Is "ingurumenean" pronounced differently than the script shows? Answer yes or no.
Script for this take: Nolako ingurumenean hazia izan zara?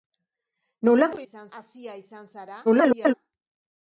yes